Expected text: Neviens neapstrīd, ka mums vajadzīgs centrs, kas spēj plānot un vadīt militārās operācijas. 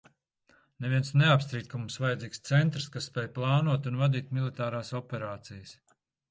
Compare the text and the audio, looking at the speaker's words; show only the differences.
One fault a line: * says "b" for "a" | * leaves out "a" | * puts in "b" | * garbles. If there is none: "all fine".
all fine